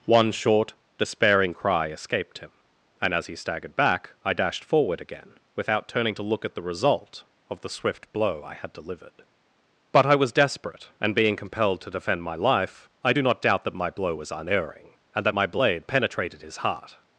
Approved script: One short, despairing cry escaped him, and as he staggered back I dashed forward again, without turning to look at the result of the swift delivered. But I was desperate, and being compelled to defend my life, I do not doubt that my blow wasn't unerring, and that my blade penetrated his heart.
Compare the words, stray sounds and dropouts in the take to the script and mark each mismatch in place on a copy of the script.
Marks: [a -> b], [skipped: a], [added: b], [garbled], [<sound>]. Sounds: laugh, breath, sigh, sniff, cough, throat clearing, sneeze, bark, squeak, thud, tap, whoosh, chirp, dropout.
One short, despairing cry escaped him, and as he staggered back I dashed forward again, without turning to look at the result of the swift [added: blow I had] delivered. But I was desperate, and being compelled to defend my life, I do not doubt that my blow [wasn't -> was] unerring, and that my blade penetrated his heart.